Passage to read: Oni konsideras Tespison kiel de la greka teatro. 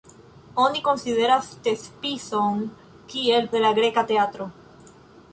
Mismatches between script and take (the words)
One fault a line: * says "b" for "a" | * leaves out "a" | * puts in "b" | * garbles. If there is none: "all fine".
all fine